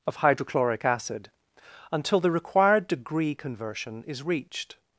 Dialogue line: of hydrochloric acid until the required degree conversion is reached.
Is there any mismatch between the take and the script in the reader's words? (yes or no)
no